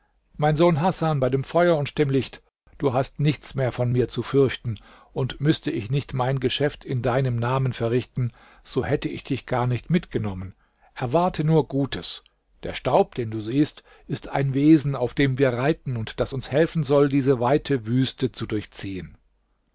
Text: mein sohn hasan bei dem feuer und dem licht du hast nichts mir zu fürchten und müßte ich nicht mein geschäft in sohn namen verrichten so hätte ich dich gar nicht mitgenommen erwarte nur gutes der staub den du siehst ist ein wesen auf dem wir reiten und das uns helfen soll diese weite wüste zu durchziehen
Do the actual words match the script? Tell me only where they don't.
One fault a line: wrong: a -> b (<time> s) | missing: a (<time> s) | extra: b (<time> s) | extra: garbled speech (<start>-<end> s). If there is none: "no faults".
extra: mehr von (3.5 s)
wrong: sohn -> deinem (7.0 s)